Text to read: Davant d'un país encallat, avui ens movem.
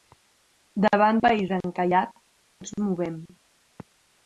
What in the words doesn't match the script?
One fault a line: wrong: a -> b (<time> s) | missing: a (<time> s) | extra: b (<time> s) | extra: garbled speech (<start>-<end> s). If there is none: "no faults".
missing: d'un (1.2 s)
missing: avui (2.1 s)